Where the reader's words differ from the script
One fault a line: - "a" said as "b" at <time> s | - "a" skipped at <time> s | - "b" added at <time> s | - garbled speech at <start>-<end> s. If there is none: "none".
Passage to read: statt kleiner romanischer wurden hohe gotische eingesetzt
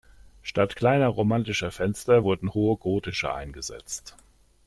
- "fenster" added at 1.7 s